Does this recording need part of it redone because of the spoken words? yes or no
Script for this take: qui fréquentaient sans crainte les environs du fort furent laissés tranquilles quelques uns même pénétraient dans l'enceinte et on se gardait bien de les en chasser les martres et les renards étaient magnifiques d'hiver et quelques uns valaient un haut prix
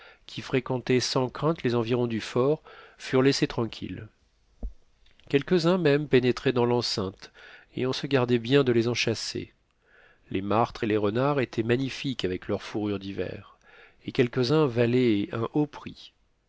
yes